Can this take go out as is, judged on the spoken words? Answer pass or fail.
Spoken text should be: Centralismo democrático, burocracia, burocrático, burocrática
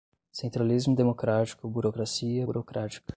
fail